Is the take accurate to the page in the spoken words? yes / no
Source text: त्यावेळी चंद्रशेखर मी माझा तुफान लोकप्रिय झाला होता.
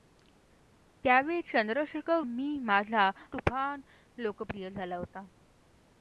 yes